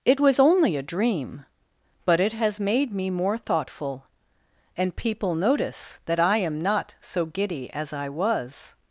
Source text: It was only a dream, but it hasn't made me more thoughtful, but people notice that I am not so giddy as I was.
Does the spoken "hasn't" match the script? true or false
false